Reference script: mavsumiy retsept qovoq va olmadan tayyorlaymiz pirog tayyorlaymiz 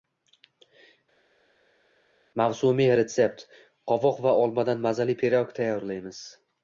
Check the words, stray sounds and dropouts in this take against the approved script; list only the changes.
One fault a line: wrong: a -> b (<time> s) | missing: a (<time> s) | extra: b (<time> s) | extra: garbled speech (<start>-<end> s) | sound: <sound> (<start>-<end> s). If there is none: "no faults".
wrong: tayyorlaymiz -> mazali (4.9 s)